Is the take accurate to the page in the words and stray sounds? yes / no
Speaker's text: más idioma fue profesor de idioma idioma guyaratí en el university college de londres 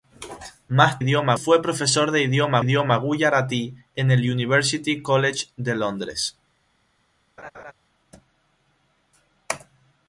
no